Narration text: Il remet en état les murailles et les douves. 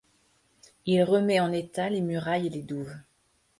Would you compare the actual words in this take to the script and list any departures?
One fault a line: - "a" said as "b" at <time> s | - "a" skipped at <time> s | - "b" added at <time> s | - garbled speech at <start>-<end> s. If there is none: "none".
none